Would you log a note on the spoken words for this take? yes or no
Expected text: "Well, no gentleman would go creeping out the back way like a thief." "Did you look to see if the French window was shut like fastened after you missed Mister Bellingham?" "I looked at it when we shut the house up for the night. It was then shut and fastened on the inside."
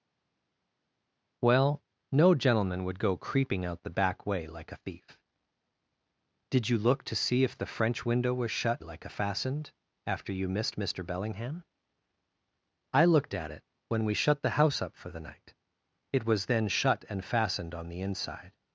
no